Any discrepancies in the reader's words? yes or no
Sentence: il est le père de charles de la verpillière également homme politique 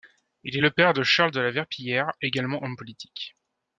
no